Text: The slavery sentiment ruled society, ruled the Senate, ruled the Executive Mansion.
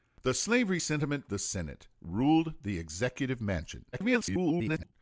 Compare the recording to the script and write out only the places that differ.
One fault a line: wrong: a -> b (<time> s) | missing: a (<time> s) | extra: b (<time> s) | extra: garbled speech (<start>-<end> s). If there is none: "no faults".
missing: ruled society ruled (1.2 s)
extra: garbled speech (3.9-4.9 s)